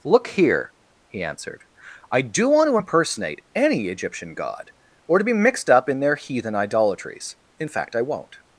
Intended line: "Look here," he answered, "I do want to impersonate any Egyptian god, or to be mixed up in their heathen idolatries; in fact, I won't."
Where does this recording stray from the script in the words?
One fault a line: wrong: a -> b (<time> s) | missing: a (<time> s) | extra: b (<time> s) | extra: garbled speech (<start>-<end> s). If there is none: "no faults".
no faults